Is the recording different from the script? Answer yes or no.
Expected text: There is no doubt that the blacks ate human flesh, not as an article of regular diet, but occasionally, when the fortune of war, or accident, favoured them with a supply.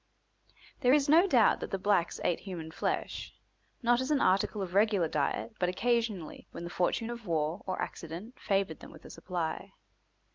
no